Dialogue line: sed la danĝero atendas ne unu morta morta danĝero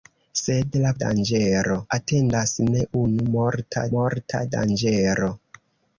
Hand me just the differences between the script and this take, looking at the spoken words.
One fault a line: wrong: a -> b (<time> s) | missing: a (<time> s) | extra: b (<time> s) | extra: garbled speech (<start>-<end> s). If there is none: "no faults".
no faults